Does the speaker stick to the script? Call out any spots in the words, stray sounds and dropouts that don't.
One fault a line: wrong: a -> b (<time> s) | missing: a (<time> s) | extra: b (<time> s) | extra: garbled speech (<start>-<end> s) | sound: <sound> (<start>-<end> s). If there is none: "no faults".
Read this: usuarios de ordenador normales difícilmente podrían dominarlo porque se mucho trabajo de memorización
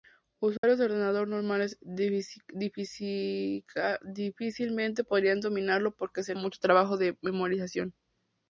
sound: dropout (0.6-0.6 s)